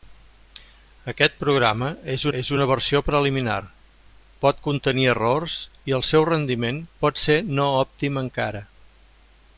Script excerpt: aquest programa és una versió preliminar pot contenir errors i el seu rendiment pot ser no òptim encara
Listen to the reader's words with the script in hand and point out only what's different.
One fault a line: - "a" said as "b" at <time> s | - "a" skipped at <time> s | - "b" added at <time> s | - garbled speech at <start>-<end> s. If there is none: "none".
- "és" added at 2.4 s